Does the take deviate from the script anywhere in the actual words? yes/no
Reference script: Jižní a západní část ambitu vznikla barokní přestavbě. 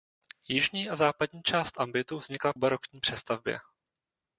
no